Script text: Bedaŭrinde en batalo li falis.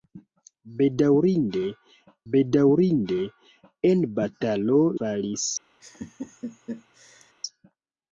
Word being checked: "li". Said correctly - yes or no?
no